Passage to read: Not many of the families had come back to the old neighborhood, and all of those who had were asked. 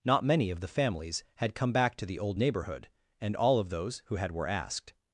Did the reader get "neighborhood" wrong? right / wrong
right